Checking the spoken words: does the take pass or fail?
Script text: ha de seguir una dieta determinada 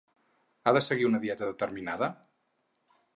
pass